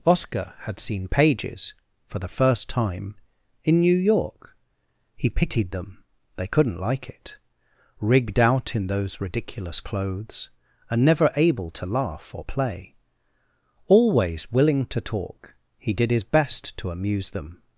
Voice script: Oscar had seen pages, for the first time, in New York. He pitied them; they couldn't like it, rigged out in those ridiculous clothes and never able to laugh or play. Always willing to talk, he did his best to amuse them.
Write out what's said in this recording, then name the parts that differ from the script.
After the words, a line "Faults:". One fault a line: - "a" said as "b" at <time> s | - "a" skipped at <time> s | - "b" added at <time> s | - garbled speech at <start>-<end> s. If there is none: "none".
Oscar had seen pages, for the first time, in New York. He pitied them; they couldn't like it, rigged out in those ridiculous clothes and never able to laugh or play. Always willing to talk, he did his best to amuse them.
Faults:
none